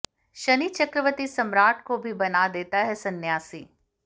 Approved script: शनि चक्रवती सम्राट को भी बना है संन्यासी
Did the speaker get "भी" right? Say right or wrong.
right